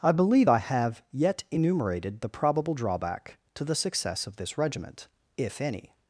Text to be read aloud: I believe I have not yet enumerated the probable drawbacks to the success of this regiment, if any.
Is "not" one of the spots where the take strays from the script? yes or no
yes